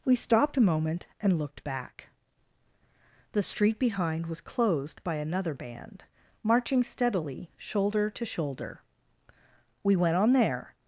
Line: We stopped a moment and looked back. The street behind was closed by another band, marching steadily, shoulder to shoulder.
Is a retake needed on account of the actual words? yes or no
yes